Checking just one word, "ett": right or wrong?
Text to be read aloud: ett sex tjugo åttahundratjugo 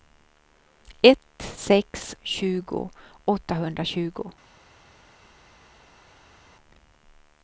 right